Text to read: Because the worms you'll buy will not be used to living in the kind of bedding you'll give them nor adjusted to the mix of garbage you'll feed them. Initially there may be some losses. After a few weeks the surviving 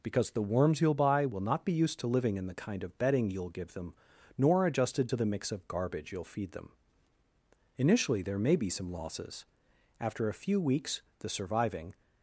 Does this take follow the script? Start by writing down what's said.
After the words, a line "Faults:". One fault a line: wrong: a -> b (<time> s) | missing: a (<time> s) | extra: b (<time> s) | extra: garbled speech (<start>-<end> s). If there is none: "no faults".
Because the worms you'll buy will not be used to living in the kind of bedding you'll give them nor adjusted to the mix of garbage you'll feed them. Initially there may be some losses. After a few weeks the surviving
Faults:
no faults